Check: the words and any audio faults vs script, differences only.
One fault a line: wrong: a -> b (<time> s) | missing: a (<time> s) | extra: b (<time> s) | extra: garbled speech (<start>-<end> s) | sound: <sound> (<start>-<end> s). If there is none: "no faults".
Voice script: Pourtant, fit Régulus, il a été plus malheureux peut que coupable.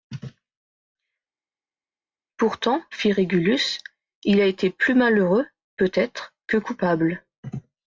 extra: être (5.9 s)